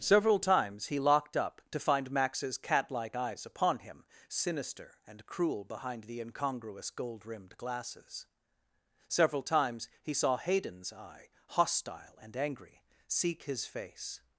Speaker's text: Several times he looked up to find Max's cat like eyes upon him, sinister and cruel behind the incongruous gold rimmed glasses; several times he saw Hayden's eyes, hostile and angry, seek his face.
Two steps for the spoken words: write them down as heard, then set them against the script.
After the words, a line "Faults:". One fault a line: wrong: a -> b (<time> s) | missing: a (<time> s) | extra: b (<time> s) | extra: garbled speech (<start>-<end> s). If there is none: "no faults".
Several times he locked up to find Max's cat like eyes upon him, sinister and cruel behind the incongruous gold rimmed glasses; several times he saw Hayden's eye, hostile and angry, seek his face.
Faults:
wrong: looked -> locked (1.0 s)
wrong: eyes -> eye (10.9 s)